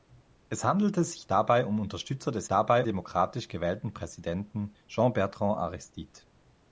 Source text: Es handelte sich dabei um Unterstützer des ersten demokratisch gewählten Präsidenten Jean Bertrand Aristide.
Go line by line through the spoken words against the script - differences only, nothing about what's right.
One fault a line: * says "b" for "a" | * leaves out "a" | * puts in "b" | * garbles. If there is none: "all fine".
* says "dabei" for "ersten"